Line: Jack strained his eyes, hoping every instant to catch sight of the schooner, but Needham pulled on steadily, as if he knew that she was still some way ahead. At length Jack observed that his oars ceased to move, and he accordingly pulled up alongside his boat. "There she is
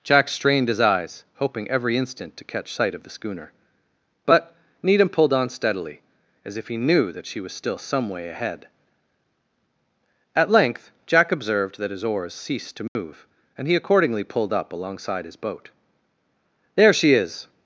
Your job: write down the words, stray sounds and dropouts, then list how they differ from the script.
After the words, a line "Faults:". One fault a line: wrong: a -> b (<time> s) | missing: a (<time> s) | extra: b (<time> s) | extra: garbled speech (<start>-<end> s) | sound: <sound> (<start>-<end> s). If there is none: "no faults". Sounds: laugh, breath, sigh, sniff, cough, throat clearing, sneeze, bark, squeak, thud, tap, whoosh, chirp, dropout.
Jack strained his eyes, hoping every instant to catch sight of the schooner, but Needham pulled on steadily, as if he knew that she was still some way ahead. At length Jack observed that his oars ceased to move, and he accordingly pulled up alongside his boat. "There she is
Faults:
sound: dropout (12.9-13.0 s)